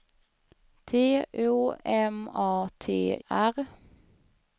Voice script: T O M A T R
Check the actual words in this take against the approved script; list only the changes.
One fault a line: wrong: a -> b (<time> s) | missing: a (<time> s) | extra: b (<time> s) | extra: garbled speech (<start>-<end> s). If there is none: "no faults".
no faults